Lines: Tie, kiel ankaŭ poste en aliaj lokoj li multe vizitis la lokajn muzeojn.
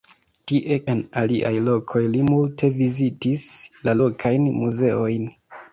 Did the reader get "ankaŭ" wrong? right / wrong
wrong